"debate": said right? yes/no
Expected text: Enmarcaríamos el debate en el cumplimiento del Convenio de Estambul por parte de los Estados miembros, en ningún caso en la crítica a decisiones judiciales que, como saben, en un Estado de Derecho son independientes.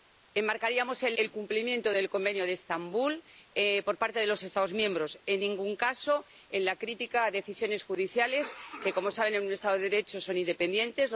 no